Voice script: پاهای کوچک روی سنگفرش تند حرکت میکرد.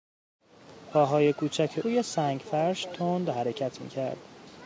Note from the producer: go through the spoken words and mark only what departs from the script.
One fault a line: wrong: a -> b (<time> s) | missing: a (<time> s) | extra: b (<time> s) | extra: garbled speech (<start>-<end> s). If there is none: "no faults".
no faults